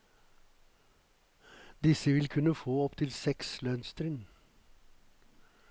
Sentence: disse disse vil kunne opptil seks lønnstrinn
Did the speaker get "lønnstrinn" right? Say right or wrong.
right